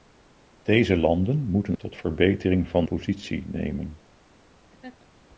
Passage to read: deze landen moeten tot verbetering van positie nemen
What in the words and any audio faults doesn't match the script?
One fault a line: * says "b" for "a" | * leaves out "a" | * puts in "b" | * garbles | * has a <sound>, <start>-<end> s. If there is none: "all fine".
* has a laugh, 4.7-5.1 s